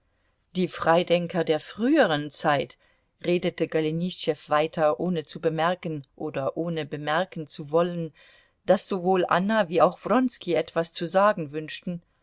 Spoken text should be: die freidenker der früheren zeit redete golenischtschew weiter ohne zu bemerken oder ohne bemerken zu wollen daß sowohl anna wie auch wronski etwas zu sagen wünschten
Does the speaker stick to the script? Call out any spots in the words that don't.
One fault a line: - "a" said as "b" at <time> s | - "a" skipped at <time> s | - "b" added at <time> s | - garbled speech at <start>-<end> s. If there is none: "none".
none